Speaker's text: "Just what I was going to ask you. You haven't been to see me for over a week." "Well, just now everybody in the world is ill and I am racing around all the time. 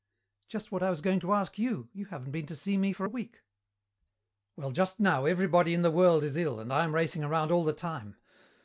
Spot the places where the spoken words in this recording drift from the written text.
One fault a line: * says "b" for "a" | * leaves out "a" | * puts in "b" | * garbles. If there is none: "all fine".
* leaves out "over"